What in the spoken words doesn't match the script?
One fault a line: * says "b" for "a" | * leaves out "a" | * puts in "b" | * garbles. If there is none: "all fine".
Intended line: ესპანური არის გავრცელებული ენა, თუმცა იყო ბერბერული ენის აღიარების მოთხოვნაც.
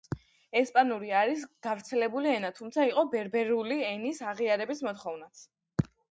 all fine